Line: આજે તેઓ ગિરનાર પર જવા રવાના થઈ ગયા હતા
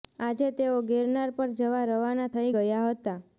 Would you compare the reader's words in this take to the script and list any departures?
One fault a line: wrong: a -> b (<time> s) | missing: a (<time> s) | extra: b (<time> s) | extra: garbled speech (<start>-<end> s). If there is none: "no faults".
no faults